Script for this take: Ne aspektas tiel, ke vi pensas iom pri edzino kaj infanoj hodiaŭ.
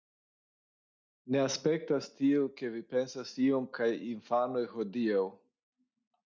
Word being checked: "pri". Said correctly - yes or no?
no